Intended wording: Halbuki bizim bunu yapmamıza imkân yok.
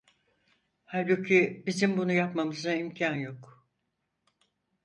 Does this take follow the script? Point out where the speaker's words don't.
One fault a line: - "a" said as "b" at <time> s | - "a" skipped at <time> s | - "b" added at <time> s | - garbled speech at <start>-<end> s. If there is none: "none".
none